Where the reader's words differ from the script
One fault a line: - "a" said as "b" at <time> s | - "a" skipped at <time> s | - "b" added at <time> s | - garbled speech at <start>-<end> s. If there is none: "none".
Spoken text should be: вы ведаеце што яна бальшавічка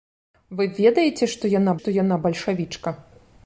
- "што яна" added at 1.8 s